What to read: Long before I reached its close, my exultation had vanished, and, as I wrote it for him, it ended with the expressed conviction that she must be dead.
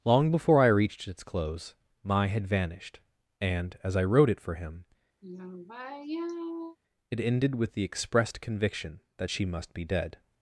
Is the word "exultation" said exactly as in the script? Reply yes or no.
no